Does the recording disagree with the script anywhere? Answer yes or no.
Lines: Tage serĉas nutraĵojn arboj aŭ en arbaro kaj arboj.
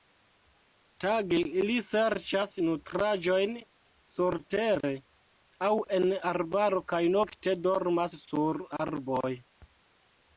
yes